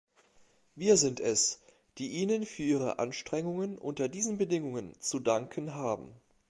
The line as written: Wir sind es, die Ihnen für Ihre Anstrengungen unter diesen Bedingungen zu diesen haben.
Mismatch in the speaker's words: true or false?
true